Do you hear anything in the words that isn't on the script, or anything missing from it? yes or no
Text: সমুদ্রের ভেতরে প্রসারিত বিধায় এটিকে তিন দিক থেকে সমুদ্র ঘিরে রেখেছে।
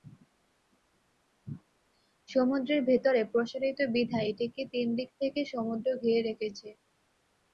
no